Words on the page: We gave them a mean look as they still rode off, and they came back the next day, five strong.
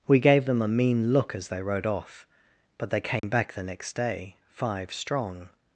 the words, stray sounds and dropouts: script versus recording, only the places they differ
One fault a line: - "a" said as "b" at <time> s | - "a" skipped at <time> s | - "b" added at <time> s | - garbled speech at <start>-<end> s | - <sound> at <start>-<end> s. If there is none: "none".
- "still" skipped at 1.6 s
- "and" said as "but" at 2.8 s
- dropout at 3.2-3.2 s